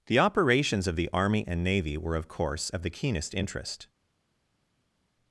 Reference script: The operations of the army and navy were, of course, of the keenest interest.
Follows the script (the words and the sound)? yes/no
yes